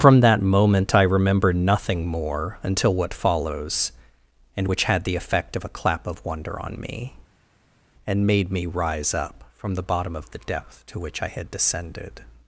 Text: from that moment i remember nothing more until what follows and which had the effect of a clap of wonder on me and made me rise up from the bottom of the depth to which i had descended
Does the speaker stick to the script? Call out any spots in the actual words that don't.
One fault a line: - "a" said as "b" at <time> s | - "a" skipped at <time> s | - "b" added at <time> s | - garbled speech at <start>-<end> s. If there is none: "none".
none